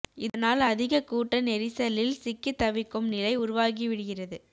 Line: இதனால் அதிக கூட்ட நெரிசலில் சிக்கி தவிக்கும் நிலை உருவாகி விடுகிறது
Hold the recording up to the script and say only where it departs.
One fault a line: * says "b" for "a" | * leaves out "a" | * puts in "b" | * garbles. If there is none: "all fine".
all fine